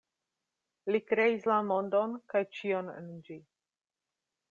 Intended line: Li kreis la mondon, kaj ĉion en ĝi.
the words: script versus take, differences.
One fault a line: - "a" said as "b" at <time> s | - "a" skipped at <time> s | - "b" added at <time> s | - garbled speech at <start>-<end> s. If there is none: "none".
none